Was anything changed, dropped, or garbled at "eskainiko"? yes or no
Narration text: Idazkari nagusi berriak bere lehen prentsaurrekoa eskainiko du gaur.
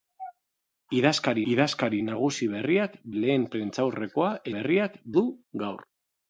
yes